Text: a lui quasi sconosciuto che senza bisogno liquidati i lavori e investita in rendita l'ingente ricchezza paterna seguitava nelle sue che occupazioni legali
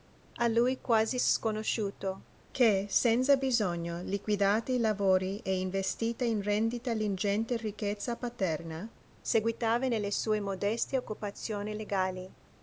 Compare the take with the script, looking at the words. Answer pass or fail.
fail